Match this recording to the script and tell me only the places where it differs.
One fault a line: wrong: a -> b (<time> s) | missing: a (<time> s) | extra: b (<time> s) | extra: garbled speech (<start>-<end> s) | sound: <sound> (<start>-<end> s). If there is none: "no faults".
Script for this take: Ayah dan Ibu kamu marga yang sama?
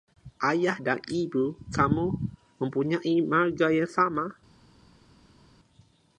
extra: mempunyai (2.6 s)